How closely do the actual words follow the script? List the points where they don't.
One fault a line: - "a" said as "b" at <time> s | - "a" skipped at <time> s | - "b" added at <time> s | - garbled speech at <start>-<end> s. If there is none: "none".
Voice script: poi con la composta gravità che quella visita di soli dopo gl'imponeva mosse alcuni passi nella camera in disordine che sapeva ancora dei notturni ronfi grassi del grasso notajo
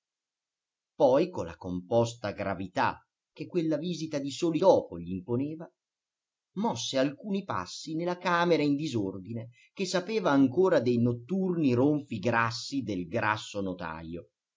none